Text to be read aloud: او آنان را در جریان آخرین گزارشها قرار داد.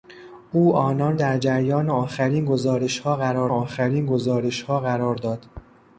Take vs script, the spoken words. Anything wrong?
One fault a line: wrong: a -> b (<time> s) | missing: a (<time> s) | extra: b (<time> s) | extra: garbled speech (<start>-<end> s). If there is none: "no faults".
missing: را (1.2 s)
extra: آخرین گزارشها قرار (3.5 s)